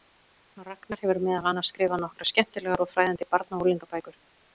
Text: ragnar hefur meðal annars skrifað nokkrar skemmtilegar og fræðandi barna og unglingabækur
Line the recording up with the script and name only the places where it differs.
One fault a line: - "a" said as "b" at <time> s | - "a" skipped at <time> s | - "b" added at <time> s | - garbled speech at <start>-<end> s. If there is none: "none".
none